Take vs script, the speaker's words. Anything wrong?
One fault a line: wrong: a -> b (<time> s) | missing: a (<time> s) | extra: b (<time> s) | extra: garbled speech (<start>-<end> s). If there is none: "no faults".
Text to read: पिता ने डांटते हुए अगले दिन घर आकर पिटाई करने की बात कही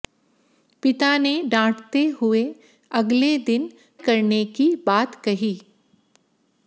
missing: घर आकर पिटाई (3.7 s)